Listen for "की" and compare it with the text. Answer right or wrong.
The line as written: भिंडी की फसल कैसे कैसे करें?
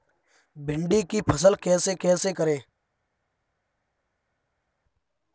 right